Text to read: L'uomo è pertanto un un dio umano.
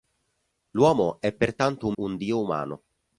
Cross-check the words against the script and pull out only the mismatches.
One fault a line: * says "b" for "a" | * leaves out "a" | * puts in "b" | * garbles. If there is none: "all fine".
all fine